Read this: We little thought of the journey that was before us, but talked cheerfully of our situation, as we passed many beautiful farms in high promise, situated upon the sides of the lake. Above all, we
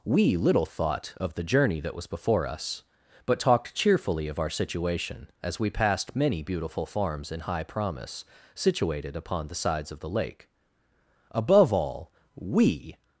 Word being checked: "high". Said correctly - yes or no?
yes